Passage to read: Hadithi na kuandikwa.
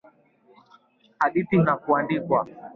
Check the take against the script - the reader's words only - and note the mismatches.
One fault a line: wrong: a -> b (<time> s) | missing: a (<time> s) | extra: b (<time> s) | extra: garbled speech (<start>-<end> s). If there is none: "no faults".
no faults